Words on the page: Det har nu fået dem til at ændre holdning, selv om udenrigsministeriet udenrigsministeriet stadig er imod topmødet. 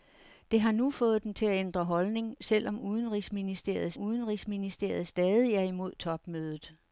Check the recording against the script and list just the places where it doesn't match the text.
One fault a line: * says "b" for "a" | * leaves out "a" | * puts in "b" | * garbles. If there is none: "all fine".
all fine